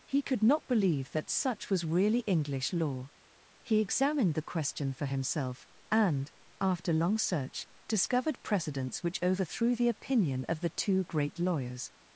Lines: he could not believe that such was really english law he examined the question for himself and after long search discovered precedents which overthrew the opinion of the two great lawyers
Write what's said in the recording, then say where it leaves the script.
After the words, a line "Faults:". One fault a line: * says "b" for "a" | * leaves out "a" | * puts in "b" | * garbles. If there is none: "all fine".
he could not believe that such was really english law he examined the question for himself and after long search discovered precedents which overthrew the opinion of the two great lawyers
Faults:
all fine